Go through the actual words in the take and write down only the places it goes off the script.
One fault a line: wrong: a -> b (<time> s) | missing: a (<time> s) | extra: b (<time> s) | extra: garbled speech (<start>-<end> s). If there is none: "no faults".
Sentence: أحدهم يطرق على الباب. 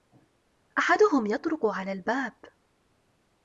no faults